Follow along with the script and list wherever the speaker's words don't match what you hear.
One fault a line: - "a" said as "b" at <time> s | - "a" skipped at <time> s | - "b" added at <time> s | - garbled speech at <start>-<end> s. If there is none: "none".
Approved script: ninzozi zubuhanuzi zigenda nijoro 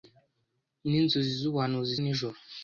- "zigenda" skipped at 1.9 s